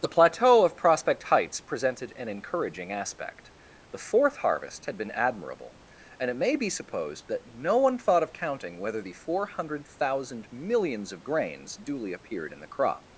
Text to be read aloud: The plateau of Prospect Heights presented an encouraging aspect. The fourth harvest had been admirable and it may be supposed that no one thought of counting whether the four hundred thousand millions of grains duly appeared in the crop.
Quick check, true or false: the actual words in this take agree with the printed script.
true